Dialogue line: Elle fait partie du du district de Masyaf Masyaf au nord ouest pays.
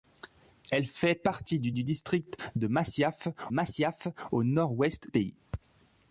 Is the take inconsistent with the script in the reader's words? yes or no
no